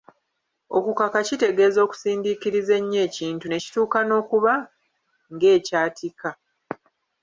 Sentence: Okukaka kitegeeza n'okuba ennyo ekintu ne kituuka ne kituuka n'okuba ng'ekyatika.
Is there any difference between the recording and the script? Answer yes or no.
yes